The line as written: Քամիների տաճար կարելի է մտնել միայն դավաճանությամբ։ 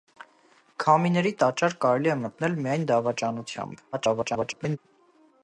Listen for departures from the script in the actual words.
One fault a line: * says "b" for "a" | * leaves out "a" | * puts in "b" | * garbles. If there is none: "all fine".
* garbles